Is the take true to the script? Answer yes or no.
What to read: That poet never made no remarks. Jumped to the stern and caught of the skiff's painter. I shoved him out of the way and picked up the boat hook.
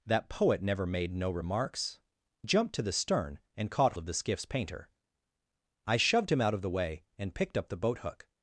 yes